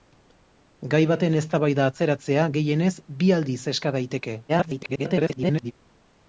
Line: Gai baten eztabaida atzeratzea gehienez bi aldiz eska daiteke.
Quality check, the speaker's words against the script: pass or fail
fail